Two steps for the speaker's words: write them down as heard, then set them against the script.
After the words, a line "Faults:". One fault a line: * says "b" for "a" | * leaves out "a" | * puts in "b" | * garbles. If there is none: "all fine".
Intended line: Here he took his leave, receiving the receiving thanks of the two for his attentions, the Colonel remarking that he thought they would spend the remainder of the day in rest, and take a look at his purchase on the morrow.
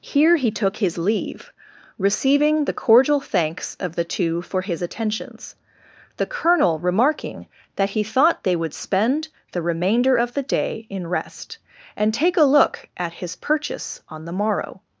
Here he took his leave, receiving the cordial thanks of the two for his attentions, the Colonel remarking that he thought they would spend the remainder of the day in rest, and take a look at his purchase on the morrow.
Faults:
* says "cordial" for "receiving"